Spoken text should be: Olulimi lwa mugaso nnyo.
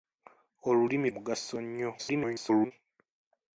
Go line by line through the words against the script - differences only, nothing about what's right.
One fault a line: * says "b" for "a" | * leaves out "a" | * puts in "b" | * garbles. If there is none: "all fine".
* leaves out "lwa"
* garbles